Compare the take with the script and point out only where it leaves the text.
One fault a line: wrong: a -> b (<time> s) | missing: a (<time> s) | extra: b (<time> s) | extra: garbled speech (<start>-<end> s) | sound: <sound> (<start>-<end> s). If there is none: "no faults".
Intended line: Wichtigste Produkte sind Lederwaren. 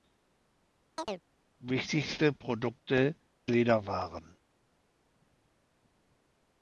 sound: chirp (1.0-1.2 s)
missing: sind (3.1 s)